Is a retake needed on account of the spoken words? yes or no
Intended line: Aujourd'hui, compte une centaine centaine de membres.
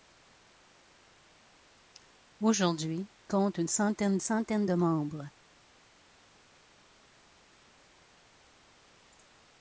no